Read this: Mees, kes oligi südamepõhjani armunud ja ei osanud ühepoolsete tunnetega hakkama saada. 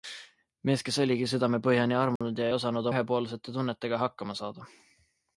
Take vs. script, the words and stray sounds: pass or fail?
fail